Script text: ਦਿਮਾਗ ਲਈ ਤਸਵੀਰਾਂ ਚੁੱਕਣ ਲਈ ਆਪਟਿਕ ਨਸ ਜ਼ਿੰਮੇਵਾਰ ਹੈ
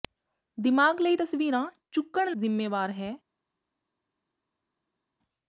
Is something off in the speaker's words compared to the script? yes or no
yes